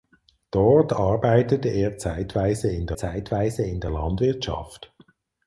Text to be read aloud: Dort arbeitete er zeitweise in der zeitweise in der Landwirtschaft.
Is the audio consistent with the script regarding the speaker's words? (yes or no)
yes